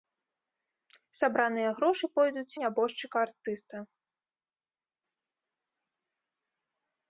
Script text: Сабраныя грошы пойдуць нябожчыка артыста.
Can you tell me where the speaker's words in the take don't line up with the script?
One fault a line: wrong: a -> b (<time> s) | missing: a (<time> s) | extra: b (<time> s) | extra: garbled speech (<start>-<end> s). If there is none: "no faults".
no faults